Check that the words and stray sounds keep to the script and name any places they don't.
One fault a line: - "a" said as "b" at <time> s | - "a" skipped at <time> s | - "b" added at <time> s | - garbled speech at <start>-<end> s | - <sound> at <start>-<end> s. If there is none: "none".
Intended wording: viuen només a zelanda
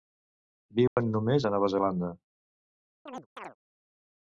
- dropout at 0.9-1.0 s
- "nova" added at 1.6 s
- chirp at 3.1-3.6 s